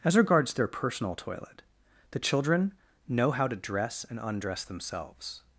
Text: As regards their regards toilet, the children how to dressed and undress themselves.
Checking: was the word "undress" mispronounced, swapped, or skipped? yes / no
no